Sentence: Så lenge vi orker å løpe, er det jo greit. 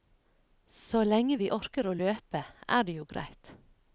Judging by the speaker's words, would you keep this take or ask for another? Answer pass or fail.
pass